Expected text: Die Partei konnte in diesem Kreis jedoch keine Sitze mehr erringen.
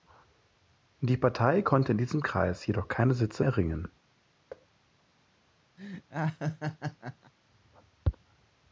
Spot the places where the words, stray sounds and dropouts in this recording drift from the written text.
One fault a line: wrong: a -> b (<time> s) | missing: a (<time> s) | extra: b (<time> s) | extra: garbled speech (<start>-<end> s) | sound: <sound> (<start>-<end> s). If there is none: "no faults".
missing: mehr (3.4 s)
sound: thud (4.5-4.7 s)
sound: laugh (5.8-7.3 s)